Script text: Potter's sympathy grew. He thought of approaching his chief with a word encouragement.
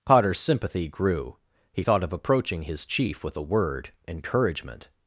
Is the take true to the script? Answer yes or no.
yes